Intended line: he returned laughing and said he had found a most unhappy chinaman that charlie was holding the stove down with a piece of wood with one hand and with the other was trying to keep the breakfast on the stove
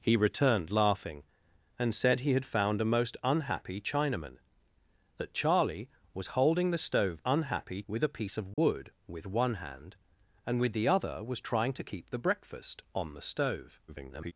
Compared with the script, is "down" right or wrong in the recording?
wrong